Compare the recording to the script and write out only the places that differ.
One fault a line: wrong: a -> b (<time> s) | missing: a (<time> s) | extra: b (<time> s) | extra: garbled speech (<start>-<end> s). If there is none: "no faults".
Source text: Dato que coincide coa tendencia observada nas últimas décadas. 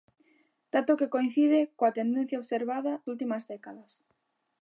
missing: nas (2.9 s)